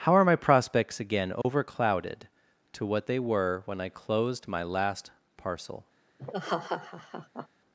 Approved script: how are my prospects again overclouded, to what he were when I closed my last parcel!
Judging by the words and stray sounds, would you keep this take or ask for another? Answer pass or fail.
fail